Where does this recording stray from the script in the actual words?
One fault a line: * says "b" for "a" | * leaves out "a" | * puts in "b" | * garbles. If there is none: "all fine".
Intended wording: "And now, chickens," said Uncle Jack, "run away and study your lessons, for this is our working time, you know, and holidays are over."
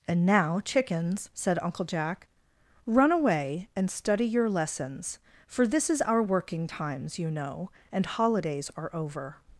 * says "times" for "time"